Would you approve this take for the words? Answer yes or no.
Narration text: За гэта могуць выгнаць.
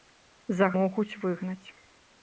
no